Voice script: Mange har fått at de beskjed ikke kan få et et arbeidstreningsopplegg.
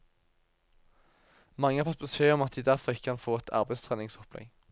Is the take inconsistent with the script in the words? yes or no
yes